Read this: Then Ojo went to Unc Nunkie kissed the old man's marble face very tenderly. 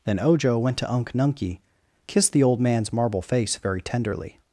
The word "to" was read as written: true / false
true